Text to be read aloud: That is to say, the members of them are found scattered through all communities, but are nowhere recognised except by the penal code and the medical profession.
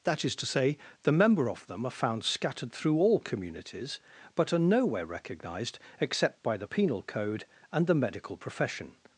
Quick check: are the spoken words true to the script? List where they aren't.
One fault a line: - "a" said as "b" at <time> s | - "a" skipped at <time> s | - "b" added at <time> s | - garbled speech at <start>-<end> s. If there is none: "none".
- "members" said as "member" at 1.1 s